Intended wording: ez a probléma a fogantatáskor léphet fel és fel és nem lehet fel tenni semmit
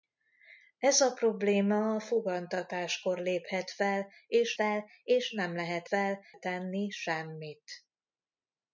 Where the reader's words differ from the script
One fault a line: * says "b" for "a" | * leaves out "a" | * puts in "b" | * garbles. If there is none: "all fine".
all fine